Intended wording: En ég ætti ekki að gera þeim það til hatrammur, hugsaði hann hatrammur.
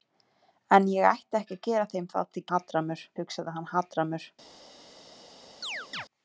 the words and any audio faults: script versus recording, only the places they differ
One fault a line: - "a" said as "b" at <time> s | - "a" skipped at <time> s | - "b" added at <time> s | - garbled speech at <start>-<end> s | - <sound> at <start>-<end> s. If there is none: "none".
- chirp at 5.6-6.1 s